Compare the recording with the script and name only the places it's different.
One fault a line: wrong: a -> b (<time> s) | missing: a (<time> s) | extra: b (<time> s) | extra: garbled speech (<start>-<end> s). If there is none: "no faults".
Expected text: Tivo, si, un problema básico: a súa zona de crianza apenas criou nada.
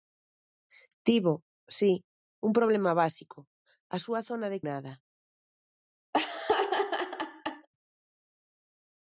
missing: crianza apenas criou (4.6 s)